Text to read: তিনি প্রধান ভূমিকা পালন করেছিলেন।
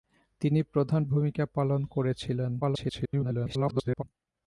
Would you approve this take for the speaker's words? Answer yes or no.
no